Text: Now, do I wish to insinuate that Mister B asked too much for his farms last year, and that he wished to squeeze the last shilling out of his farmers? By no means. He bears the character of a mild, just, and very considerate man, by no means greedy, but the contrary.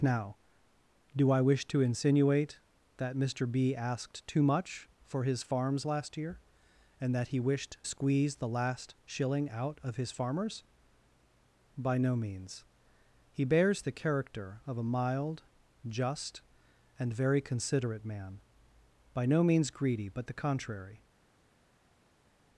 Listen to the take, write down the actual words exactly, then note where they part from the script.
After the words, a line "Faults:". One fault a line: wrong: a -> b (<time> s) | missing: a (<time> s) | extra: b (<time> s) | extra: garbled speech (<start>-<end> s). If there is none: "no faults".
Now, do I wish to insinuate that Mister B asked too much for his farms last year, and that he wished squeeze the last shilling out of his farmers? By no means. He bears the character of a mild, just, and very considerate man, by no means greedy, but the contrary.
Faults:
missing: to (7.8 s)